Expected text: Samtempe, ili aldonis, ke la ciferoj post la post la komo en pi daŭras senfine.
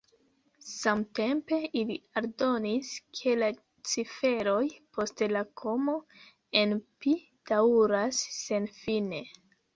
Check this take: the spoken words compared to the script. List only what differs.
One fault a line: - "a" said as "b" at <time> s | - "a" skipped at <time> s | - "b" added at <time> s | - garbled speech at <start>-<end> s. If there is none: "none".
- "post la" skipped at 5.5 s